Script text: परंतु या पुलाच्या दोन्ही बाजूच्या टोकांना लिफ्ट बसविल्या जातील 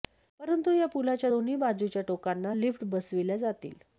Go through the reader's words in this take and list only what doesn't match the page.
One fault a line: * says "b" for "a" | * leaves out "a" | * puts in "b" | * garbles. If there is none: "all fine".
all fine